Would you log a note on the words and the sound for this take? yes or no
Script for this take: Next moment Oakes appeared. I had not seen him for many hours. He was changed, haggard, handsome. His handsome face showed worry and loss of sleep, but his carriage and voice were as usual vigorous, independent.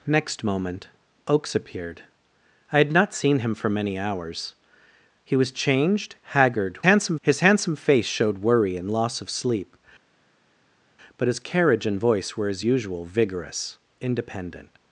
no